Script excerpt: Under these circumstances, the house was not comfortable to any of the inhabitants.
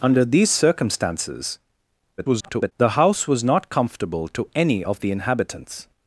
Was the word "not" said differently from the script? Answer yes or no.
no